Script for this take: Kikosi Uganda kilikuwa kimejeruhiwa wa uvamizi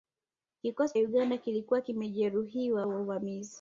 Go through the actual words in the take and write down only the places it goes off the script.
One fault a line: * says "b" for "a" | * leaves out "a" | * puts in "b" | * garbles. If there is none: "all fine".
all fine